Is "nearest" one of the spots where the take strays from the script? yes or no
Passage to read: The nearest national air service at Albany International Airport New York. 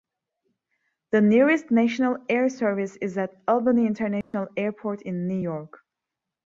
no